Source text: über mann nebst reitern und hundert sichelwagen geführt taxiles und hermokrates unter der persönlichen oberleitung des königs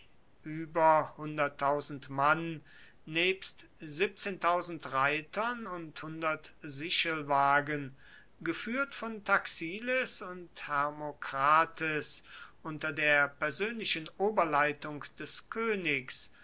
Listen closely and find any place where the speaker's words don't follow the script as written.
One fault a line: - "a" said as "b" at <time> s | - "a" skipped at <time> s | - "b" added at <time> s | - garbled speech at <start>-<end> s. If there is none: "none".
- "von" added at 8.9 s